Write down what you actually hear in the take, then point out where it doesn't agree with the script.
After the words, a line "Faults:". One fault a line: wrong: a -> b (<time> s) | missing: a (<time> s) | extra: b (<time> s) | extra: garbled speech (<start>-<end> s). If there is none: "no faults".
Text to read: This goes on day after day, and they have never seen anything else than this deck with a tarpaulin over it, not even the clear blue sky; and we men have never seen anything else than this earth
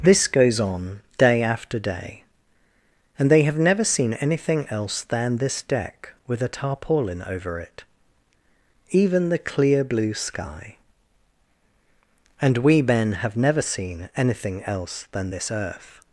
This goes on day after day, and they have never seen anything else than this deck with a tarpaulin over it, even the clear blue sky; and we men have never seen anything else than this earth
Faults:
missing: not (7.8 s)